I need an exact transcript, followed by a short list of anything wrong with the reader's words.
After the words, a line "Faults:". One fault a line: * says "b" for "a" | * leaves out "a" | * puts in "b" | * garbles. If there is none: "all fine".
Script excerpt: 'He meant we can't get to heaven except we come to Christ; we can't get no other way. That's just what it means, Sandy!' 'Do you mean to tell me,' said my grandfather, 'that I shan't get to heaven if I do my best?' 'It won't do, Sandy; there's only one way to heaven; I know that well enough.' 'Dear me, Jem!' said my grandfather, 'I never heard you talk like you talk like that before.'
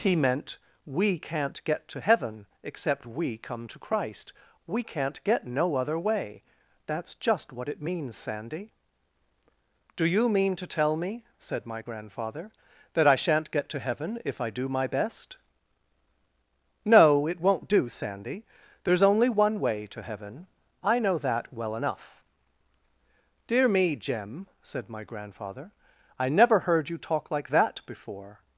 'He meant we can't get to heaven except we come to Christ; we can't get no other way. That's just what it means, Sandy!' 'Do you mean to tell me,' said my grandfather, 'that I shan't get to heaven if I do my best?' 'No, it won't do, Sandy; there's only one way to heaven; I know that well enough.' 'Dear me, Jem!' said my grandfather, 'I never heard you talk like that before.'
Faults:
* puts in "No"
* leaves out "you talk like"